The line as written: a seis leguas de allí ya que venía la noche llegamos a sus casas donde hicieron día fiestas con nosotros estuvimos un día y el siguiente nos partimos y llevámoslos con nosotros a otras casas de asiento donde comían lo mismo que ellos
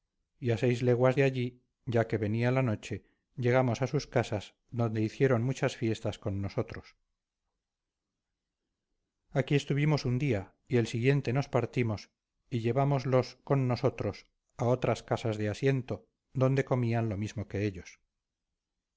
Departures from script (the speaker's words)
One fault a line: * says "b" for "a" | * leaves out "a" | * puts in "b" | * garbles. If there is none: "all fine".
* says "muchas" for "día"
* puts in "aquí"